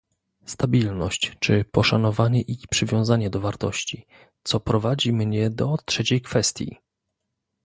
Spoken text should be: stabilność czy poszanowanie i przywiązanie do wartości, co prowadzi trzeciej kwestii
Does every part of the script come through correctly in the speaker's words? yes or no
no